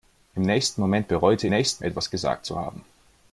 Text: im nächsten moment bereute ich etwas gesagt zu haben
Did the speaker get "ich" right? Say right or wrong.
wrong